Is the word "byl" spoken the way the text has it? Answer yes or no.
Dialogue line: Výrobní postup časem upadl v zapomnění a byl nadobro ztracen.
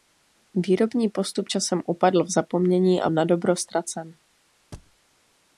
no